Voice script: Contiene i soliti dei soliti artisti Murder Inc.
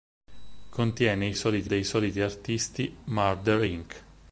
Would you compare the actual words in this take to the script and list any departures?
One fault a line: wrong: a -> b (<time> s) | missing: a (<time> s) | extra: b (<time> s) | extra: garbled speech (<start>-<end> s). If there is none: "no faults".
no faults